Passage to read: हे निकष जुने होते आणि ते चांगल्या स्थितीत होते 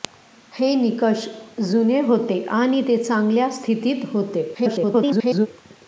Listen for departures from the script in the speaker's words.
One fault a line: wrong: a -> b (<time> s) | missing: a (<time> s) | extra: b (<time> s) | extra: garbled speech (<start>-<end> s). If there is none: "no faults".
extra: garbled speech (4.5-5.5 s)